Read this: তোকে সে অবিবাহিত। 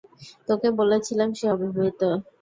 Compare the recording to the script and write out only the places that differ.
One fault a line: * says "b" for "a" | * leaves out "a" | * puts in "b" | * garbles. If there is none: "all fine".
* puts in "বলেছিলাম"